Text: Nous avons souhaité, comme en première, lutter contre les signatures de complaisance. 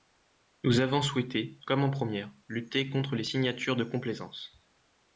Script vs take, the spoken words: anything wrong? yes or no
no